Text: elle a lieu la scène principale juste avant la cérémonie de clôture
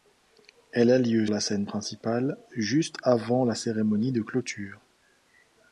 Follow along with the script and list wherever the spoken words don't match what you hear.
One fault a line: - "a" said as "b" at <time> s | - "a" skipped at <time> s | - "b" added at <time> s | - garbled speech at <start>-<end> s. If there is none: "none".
none